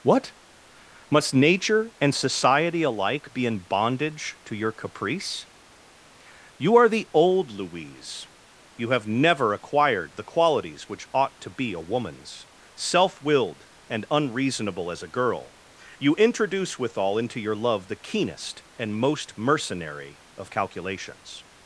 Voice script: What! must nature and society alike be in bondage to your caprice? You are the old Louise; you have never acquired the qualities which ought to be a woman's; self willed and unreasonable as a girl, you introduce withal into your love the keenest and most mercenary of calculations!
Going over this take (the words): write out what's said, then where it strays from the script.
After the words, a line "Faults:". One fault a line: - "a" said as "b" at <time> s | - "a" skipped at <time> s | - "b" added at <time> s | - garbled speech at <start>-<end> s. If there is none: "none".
What! must nature and society alike be in bondage to your caprice? You are the old Louise; you have never acquired the qualities which ought to be a woman's; self willed and unreasonable as a girl, you introduce withal into your love the keenest and most mercenary of calculations!
Faults:
none